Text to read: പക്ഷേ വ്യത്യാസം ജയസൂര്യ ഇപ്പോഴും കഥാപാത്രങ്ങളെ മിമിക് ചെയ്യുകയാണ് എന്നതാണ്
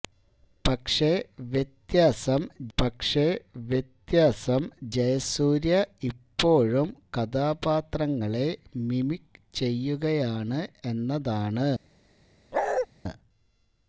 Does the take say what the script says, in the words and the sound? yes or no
no